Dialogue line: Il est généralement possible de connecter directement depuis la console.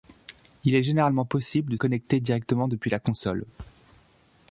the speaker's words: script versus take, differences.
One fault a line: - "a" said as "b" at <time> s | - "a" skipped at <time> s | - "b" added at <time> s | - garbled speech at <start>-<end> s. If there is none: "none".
none